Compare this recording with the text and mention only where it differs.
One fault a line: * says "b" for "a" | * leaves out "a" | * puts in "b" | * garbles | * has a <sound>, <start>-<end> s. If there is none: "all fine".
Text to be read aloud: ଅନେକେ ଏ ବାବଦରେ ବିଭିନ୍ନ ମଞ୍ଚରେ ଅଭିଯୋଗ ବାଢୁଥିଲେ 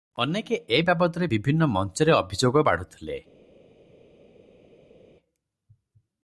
all fine